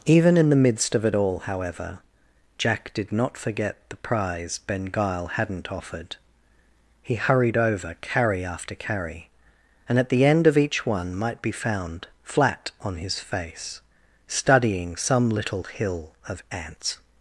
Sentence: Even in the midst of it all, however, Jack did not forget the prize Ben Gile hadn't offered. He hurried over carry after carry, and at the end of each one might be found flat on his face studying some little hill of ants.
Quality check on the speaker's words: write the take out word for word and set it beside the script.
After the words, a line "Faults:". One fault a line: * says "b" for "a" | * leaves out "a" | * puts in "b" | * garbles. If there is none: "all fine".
Even in the midst of it all, however, Jack did not forget the prize Ben Gile hadn't offered. He hurried over carry after carry, and at the end of each one might be found flat on his face studying some little hill of ants.
Faults:
all fine